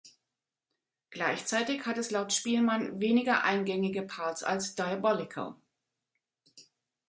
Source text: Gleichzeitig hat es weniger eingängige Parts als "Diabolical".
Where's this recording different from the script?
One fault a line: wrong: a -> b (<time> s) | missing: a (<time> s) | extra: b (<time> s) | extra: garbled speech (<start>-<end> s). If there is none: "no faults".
extra: laut Spielmann (2.1 s)